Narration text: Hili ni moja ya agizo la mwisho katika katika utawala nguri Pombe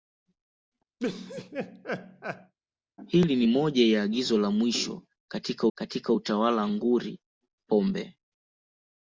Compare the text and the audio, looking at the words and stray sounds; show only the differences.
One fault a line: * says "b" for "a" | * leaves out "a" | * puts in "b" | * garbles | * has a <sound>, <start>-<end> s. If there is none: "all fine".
* has a laugh, 1.0-2.5 s